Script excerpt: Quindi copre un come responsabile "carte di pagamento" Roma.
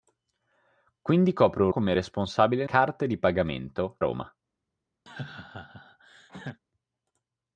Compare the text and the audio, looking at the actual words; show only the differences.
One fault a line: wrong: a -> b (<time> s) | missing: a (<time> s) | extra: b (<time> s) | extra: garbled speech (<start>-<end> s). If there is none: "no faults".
no faults